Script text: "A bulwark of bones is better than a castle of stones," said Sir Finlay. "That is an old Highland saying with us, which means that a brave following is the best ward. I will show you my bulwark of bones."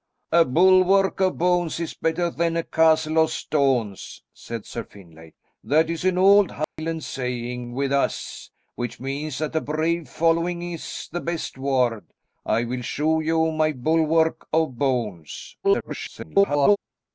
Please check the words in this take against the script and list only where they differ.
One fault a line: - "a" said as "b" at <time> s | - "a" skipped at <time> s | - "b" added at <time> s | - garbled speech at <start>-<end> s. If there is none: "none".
- garbled speech at 15.6-16.8 s